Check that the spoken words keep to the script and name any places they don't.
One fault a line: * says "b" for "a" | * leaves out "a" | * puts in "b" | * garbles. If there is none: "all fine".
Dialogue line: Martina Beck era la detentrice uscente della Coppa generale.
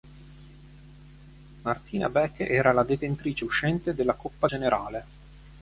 all fine